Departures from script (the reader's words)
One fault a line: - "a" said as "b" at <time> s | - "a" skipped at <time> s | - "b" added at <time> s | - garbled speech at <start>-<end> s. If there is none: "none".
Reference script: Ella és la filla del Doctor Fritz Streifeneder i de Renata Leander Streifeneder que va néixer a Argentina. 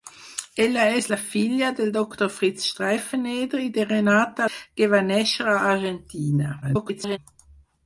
- "Leander Streifeneder" skipped at 4.5 s
- garbled speech at 6.6-7.2 s